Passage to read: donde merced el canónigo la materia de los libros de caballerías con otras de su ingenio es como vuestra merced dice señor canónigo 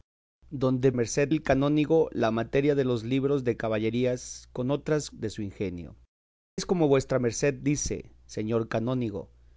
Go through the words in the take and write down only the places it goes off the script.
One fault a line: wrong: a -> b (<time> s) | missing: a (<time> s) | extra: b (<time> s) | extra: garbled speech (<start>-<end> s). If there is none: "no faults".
no faults